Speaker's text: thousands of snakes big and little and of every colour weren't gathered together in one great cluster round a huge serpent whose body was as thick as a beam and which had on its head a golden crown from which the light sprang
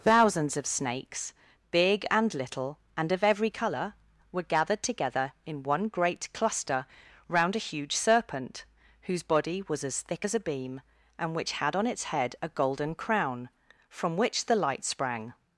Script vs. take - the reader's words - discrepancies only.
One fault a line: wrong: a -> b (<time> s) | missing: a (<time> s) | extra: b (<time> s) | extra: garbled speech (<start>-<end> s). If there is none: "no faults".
wrong: weren't -> were (4.3 s)